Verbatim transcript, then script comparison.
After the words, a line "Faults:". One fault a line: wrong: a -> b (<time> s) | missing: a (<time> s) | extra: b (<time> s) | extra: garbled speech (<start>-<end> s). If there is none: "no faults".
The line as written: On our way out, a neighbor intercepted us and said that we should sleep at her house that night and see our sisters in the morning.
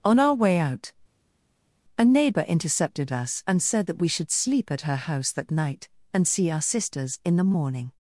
On our way out, a neighbor intercepted us and said that we should sleep at her house that night and see our sisters in the morning.
Faults:
no faults